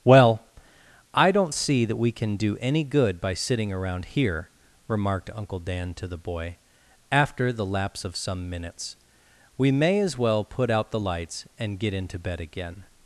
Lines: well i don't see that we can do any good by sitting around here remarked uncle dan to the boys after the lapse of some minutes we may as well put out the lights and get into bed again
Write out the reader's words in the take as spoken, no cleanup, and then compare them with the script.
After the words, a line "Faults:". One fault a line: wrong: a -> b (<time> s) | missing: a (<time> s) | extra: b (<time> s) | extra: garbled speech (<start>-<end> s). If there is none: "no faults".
well i don't see that we can do any good by sitting around here remarked uncle dan to the boy after the lapse of some minutes we may as well put out the lights and get into bed again
Faults:
wrong: boys -> boy (6.2 s)